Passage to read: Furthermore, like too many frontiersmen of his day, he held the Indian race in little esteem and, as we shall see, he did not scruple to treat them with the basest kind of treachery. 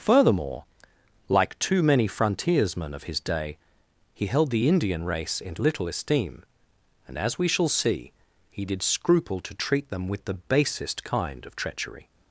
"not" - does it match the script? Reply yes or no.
no